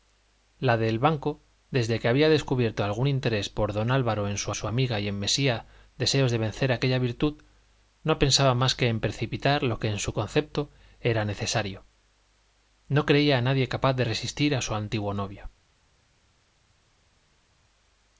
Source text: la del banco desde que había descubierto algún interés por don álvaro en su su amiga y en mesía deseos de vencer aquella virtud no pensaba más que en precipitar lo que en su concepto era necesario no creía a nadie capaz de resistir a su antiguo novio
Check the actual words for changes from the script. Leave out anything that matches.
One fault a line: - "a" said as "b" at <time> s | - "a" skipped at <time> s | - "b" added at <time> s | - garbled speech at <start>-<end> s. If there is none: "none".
none